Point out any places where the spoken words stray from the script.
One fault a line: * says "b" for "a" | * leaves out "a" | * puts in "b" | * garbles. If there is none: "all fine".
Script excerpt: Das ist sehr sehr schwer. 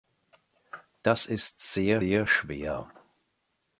all fine